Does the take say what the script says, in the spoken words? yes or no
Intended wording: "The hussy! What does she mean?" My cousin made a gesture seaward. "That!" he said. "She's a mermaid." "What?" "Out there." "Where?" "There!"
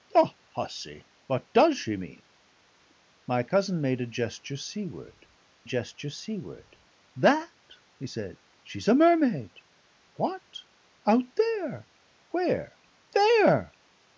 no